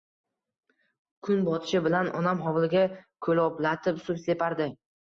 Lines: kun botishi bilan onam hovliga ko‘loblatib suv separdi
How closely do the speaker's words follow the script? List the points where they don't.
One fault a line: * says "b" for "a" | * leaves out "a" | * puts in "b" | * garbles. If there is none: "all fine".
all fine